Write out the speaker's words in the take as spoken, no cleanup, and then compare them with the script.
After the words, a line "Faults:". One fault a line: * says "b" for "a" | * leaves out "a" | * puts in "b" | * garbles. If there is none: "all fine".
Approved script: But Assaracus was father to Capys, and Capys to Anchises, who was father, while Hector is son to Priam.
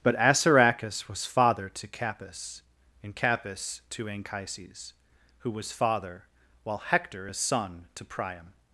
But Assaracus was father to Capys, and Capys to Anchises, who was father, while Hector is son to Priam.
Faults:
all fine